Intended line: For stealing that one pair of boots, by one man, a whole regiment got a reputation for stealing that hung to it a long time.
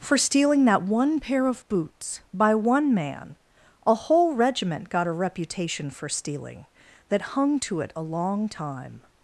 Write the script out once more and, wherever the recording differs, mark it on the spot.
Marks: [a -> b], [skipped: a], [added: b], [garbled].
For stealing that one pair of boots, by one man, a whole regiment got a reputation for stealing that hung to it a long time.